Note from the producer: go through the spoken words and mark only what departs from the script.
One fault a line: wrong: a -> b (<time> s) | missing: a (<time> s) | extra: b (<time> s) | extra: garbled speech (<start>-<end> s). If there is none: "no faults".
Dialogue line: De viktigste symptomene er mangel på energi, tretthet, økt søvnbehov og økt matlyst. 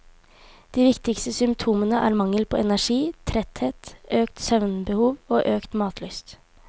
no faults